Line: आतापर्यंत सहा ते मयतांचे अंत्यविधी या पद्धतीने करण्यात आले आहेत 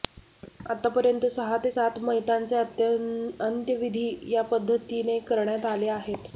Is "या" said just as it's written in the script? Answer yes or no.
yes